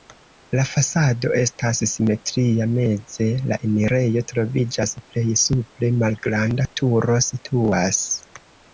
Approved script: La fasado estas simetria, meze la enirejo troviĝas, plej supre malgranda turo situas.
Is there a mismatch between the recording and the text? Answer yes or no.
no